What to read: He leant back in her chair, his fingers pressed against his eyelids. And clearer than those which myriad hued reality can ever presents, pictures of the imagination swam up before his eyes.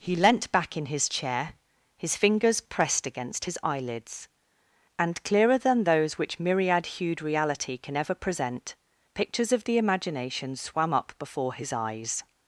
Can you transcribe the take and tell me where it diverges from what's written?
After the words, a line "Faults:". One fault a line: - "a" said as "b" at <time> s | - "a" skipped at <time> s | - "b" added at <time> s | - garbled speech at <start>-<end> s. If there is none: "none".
He leant back in his chair, his fingers pressed against his eyelids. And clearer than those which myriad hued reality can ever present, pictures of the imagination swam up before his eyes.
Faults:
- "her" said as "his" at 0.9 s
- "presents" said as "present" at 8.1 s